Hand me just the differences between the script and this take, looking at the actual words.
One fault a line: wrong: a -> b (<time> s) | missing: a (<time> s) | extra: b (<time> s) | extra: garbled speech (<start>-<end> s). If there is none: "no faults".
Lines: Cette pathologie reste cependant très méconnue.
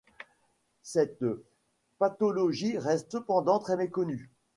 no faults